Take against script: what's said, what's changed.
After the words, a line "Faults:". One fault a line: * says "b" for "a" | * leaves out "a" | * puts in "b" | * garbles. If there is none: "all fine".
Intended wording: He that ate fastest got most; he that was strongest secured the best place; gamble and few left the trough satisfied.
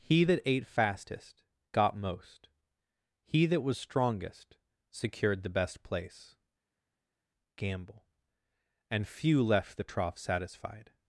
He that ate fastest got most; he that was strongest secured the best place; gamble and few left the trough satisfied.
Faults:
all fine